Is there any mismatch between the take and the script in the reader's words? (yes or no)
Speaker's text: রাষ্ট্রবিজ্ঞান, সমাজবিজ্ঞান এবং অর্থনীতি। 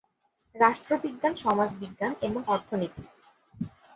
no